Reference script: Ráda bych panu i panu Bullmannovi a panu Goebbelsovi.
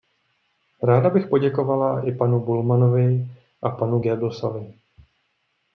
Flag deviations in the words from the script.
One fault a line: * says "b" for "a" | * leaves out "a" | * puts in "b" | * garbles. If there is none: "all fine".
* says "poděkovala" for "panu"